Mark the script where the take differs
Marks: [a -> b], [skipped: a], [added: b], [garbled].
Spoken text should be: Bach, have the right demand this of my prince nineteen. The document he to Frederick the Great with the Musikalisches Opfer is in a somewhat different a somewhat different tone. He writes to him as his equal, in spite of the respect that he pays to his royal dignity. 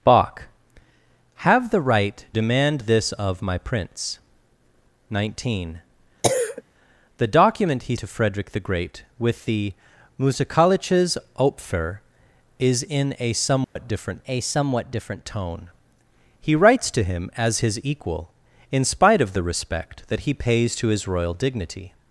Bach, have the right demand this of my prince nineteen. The document he to Frederick the Great with the Musikalisches Opfer is in a somewhat different a somewhat different tone. He writes to him as his equal, in spite of the respect that he pays to his royal dignity.